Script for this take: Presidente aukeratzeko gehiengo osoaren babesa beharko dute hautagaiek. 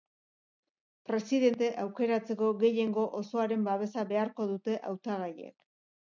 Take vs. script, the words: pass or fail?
pass